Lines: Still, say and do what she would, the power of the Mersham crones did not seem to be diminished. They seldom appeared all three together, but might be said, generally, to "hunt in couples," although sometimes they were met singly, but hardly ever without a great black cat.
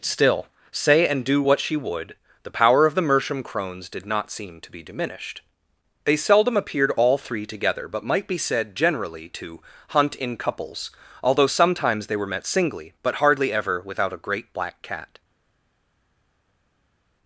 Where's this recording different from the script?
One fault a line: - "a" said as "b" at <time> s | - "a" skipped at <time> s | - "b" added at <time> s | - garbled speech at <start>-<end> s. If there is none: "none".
none